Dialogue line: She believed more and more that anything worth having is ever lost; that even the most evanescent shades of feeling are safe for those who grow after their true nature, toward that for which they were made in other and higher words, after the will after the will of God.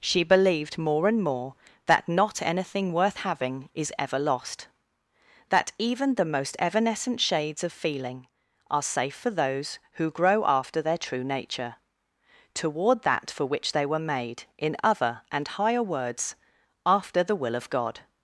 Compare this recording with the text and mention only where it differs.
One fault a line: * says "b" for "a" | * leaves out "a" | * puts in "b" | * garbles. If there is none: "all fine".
* puts in "not"
* leaves out "after the will"